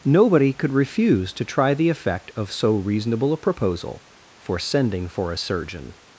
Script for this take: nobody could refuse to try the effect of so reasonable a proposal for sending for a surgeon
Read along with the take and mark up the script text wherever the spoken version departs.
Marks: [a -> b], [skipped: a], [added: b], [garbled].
nobody could refuse to try the effect of so reasonable a proposal for sending for a surgeon